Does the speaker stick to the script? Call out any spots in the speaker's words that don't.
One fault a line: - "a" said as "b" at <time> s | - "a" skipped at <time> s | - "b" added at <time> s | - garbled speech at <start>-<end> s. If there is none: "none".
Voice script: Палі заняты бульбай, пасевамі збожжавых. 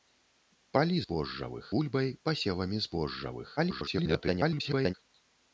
- "заняты" said as "збожжавых" at 1.1 s
- garbled speech at 3.6-4.9 s